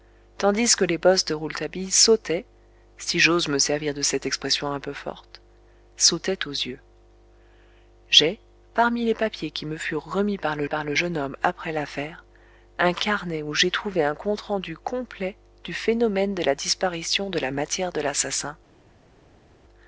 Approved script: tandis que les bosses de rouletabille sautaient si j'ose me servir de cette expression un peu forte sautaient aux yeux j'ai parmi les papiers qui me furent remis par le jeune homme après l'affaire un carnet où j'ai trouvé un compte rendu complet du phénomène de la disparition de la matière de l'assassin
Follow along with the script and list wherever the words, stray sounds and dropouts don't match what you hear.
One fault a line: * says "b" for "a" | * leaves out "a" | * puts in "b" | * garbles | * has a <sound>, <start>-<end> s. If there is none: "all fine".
* puts in "par le"